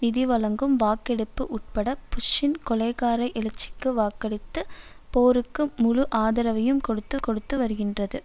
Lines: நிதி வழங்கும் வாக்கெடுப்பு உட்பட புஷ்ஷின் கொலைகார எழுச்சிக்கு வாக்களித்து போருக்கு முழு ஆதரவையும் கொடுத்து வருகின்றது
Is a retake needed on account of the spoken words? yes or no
yes